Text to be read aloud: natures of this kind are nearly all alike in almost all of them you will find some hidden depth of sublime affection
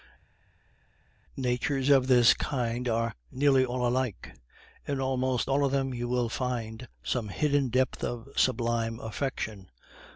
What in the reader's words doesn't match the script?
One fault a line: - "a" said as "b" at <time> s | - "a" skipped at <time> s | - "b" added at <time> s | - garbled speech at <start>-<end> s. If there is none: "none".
none